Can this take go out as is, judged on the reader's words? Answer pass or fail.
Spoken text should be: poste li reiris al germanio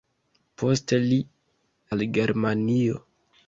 fail